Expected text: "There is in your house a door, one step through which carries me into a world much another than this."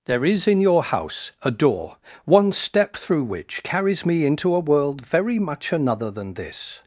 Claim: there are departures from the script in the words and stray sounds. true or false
true